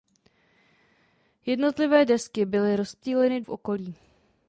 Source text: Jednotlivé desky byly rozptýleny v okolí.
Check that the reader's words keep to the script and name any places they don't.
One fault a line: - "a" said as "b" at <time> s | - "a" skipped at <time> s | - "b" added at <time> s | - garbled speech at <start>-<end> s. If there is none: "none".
none